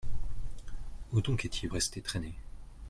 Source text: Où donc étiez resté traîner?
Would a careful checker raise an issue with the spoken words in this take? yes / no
no